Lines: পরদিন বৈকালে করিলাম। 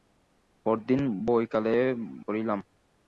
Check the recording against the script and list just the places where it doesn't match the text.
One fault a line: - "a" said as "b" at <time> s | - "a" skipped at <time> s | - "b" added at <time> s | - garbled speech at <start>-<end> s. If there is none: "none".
none